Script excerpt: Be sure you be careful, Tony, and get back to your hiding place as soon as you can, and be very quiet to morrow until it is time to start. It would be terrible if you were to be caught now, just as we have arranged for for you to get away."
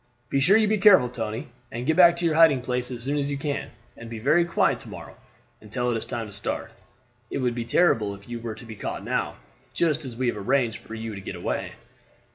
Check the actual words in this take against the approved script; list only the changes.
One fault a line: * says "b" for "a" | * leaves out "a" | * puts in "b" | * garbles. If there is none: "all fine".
all fine